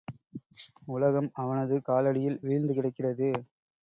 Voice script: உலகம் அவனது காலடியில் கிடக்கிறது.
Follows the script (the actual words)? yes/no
no